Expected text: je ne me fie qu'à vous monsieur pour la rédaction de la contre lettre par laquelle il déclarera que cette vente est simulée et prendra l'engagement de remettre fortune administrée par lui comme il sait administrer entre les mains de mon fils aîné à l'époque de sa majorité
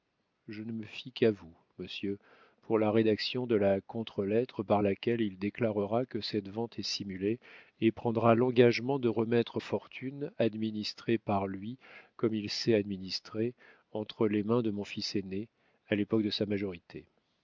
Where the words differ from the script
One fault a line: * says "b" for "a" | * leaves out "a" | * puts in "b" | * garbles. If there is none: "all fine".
all fine